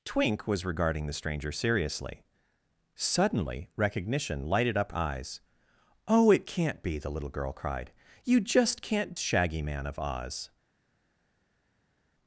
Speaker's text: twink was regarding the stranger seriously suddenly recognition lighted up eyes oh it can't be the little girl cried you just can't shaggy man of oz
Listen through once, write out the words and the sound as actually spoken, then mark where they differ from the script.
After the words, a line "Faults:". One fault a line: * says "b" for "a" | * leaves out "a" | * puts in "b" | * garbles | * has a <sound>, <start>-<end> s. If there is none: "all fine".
twink was regarding the stranger seriously suddenly recognition lighted up eyes oh it can't be the little girl cried you just can't shaggy man of oz
Faults:
all fine